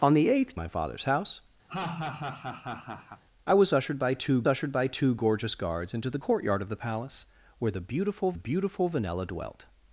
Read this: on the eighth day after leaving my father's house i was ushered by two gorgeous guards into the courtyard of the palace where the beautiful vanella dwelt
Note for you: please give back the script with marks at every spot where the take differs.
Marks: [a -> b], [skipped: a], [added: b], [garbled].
on the eighth [skipped: day after leaving] my father's house i was ushered by two [added: ushered by two] gorgeous guards into the courtyard of the palace where the beautiful [added: beautiful] vanella dwelt